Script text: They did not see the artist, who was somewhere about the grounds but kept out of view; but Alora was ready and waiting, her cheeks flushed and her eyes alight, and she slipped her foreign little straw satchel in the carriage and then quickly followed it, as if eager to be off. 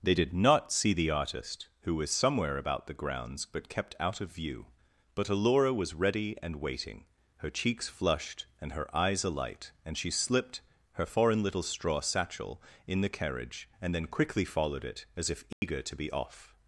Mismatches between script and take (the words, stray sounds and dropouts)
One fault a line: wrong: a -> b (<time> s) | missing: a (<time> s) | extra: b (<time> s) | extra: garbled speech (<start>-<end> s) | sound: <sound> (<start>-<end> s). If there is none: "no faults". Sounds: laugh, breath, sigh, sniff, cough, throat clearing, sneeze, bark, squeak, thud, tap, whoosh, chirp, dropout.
sound: dropout (15.5-15.6 s)